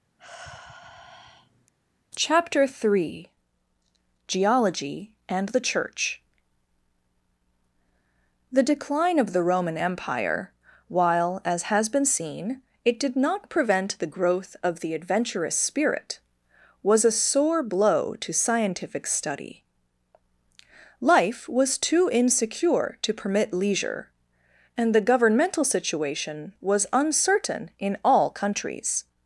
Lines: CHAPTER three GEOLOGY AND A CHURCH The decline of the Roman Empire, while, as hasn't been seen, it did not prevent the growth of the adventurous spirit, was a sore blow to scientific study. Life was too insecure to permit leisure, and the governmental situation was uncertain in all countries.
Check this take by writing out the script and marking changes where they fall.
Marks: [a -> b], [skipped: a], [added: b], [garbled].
CHAPTER three GEOLOGY AND [A -> THE] CHURCH The decline of the Roman Empire, while, as [hasn't -> has] been seen, it did not prevent the growth of the adventurous spirit, was a sore blow to scientific study. Life was too insecure to permit leisure, and the governmental situation was uncertain in all countries.